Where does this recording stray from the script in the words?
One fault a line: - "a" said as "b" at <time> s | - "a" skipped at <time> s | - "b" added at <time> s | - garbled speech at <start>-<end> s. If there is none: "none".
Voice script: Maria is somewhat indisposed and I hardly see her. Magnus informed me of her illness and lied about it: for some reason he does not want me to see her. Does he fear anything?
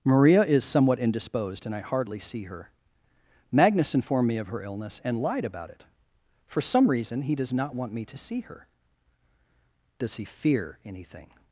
none